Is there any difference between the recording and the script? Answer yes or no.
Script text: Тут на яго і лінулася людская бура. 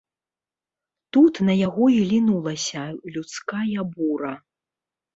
no